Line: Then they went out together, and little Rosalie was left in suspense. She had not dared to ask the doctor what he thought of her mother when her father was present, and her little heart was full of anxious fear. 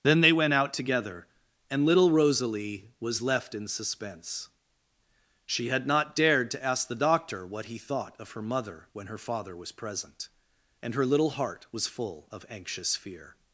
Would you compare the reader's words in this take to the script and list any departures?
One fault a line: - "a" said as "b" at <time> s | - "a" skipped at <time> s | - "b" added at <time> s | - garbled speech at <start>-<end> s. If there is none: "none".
none